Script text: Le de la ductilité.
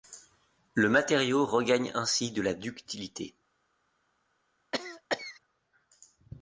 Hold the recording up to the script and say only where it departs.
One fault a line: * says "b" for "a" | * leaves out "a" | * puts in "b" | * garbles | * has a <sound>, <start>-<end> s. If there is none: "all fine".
* puts in "matériau regagne ainsi"
* has a cough, 4.7-5.4 s